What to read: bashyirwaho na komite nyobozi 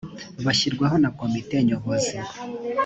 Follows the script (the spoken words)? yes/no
yes